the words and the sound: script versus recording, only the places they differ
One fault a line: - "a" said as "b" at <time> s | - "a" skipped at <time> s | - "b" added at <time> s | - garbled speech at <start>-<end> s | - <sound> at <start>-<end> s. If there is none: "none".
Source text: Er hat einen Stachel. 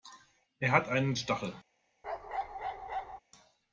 - bark at 2.0-3.2 s